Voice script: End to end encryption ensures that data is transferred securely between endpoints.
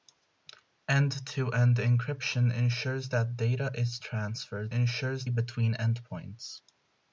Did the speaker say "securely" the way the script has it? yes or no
no